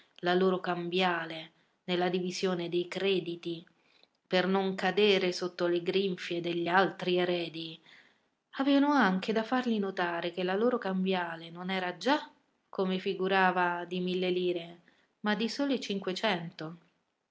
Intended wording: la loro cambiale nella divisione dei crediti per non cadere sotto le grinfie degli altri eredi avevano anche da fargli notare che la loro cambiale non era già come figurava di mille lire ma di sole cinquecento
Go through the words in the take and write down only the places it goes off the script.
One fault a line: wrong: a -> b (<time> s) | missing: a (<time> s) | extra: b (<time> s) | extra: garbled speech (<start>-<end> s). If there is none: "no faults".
no faults